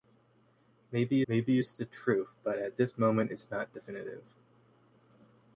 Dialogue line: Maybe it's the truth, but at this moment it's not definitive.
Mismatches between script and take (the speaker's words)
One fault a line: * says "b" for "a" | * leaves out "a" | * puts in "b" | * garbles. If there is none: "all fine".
* puts in "maybe"